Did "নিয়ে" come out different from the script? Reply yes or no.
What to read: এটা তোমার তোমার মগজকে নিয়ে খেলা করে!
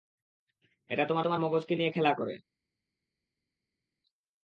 no